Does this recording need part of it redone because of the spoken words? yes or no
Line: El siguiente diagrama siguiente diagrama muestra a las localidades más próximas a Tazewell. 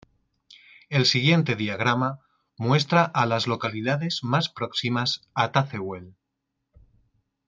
yes